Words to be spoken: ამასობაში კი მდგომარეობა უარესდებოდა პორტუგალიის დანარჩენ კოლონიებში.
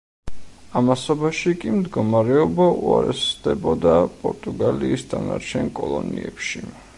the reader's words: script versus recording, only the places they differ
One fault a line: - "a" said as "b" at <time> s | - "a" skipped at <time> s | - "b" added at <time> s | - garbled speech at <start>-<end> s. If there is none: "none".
none